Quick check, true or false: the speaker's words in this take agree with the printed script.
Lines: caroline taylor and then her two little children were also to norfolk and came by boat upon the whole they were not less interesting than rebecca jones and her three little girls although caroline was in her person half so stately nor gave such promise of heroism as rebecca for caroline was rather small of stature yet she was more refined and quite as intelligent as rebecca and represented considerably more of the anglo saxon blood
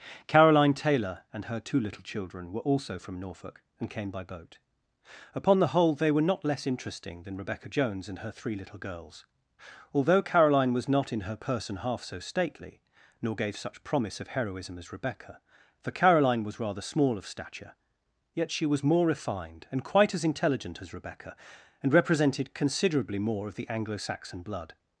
false